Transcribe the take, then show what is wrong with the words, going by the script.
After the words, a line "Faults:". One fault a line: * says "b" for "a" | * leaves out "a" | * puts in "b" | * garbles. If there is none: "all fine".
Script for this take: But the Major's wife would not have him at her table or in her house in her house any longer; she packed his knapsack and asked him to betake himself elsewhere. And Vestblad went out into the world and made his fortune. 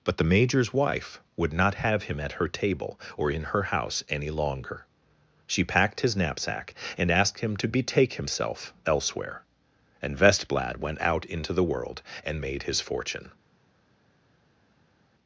But the Major's wife would not have him at her table or in her house any longer; she packed his knapsack and asked him to betake himself elsewhere. And Vestblad went out into the world and made his fortune.
Faults:
* leaves out "in her house"